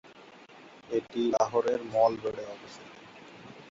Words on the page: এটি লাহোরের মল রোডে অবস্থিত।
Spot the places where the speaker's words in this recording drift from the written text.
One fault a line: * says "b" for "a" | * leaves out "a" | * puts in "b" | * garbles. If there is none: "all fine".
all fine